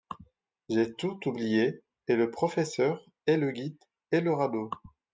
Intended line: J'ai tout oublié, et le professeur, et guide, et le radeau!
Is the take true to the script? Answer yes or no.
no